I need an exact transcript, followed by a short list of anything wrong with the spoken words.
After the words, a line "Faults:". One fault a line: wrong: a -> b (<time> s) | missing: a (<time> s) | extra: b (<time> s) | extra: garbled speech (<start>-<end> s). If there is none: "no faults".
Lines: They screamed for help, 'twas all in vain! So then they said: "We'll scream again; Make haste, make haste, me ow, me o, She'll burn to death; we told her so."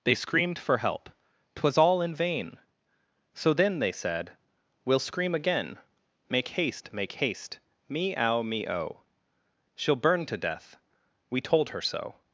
They screamed for help, 'twas all in vain! So then they said: "We'll scream again; Make haste, make haste, me ow, me o, She'll burn to death; we told her so."
Faults:
no faults